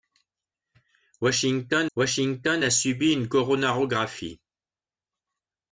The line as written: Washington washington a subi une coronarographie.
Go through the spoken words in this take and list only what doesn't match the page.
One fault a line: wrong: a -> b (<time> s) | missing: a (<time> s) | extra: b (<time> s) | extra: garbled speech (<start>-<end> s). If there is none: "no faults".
no faults